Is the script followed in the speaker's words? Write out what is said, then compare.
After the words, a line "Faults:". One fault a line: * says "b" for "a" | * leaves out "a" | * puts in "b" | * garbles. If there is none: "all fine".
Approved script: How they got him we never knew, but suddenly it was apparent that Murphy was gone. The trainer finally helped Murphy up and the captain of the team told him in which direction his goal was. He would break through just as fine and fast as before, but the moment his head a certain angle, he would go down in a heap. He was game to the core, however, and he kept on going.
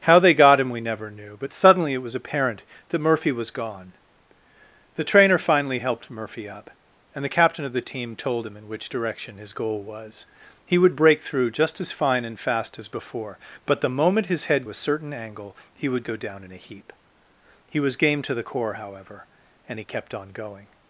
How they got him we never knew, but suddenly it was apparent that Murphy was gone. The trainer finally helped Murphy up and the captain of the team told him in which direction his goal was. He would break through just as fine and fast as before, but the moment his head a certain angle, he would go down in a heap. He was game to the core, however, and he kept on going.
Faults:
all fine